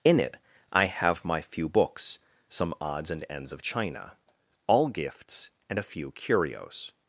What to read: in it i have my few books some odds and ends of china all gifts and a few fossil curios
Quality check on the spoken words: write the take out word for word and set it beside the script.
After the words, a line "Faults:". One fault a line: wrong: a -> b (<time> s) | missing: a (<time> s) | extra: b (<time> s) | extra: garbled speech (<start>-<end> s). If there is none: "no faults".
in it i have my few books some odds and ends of china all gifts and a few curios
Faults:
missing: fossil (6.1 s)